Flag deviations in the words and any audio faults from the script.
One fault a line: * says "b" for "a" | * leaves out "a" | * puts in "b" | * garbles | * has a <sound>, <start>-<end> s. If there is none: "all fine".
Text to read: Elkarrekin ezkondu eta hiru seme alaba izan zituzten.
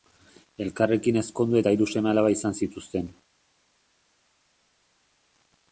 all fine